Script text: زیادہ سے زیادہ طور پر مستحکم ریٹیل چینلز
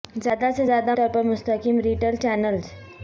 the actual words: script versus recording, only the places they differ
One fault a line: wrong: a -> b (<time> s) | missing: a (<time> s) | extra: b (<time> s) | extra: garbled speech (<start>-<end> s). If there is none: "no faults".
no faults